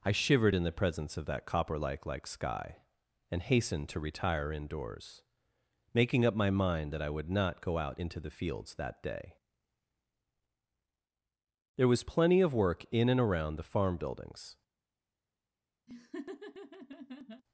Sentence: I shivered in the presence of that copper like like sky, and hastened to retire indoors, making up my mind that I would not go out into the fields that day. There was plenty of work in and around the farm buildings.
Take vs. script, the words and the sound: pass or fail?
fail